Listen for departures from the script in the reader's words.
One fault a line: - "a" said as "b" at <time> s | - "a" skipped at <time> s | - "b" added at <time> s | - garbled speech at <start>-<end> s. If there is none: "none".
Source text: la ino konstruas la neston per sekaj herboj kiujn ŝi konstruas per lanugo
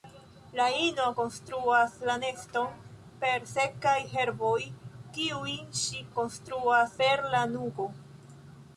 none